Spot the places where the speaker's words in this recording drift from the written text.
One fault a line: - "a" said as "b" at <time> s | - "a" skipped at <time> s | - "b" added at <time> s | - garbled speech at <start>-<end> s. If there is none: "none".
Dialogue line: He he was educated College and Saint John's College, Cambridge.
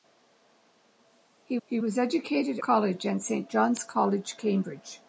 none